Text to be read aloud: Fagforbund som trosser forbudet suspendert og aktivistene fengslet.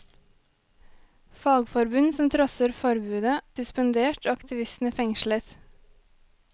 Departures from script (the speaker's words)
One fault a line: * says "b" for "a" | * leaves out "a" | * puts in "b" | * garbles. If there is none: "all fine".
all fine